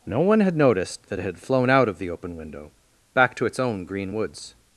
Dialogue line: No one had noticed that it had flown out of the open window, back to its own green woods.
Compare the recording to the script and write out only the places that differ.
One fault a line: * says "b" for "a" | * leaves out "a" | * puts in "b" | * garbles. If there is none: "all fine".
all fine